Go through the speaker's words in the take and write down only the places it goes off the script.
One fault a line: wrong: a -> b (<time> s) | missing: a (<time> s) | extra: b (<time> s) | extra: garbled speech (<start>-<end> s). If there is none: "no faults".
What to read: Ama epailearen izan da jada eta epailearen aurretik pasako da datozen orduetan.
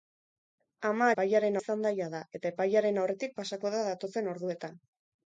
no faults